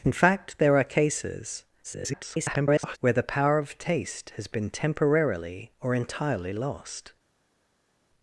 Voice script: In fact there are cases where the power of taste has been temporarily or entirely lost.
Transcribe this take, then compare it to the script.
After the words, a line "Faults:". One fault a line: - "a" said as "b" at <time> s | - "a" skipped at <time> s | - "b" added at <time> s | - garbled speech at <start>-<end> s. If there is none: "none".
In fact there are cases [garbled] where the power of taste has been temporarily or entirely lost.
Faults:
- garbled speech at 1.8-3.0 s